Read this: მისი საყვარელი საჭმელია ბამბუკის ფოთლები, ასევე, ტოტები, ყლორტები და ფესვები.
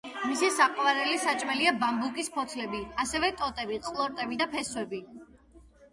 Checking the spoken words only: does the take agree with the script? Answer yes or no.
yes